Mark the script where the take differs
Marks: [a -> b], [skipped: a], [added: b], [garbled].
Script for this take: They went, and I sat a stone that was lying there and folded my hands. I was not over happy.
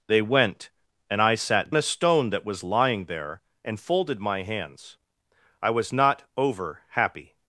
They went, and I sat a stone that was lying there and folded my hands. I was not over happy.